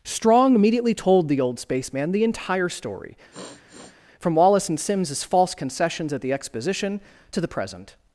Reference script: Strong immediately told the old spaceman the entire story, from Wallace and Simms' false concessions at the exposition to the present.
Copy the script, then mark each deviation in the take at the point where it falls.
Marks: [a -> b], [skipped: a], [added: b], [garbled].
Strong immediately told the old spaceman the entire story, from Wallace and Simms' false concessions at the exposition to the present.